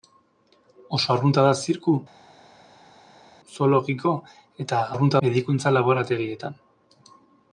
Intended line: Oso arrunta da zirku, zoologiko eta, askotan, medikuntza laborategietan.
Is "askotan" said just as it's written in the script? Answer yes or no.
no